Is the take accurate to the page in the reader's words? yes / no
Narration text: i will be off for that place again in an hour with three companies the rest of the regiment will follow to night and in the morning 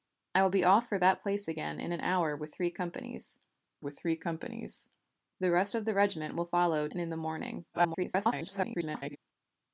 no